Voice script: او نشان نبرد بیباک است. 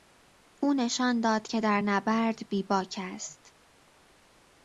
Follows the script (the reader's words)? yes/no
no